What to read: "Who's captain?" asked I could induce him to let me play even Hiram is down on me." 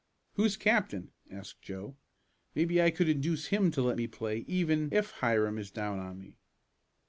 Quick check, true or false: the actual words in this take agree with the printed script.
false